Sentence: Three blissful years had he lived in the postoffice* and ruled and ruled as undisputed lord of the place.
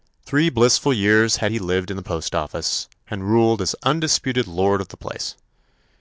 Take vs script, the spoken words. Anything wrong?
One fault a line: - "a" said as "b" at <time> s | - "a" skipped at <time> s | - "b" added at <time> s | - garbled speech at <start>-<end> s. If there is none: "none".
- "and ruled" skipped at 3.6 s